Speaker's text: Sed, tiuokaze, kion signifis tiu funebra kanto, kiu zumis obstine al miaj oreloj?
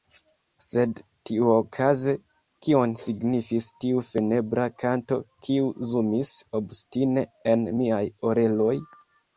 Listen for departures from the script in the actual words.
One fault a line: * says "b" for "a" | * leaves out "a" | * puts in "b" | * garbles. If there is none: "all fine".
* says "en" for "al"